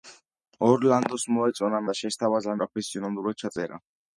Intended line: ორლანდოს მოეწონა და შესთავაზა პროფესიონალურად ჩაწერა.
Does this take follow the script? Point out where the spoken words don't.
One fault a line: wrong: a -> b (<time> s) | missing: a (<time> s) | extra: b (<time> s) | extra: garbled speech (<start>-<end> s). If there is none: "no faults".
no faults